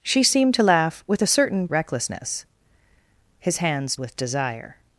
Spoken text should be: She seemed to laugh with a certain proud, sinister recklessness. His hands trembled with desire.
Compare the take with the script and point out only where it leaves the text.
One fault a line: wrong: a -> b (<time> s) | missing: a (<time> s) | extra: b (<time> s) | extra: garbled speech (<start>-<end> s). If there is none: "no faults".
missing: proud sinister (1.7 s)
missing: trembled (4.0 s)